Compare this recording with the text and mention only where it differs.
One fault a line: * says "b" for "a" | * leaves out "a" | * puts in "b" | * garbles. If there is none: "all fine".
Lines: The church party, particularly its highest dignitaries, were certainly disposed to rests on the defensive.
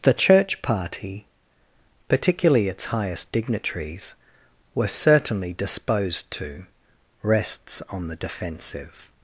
all fine